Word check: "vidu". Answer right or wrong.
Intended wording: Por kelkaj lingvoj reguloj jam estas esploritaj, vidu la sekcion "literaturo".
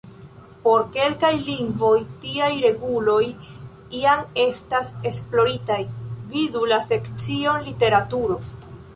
right